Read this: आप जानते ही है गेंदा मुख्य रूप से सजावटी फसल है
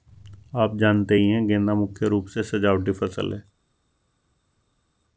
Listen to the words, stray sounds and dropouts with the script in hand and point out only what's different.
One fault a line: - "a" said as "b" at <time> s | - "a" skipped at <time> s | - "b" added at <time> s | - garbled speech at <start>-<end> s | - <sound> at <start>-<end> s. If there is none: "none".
none